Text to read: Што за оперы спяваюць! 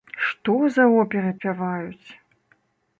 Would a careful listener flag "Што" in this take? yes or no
no